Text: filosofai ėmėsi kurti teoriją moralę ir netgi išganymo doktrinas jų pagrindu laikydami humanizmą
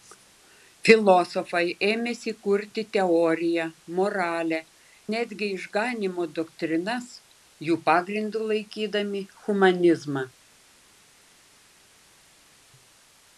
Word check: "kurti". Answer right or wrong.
right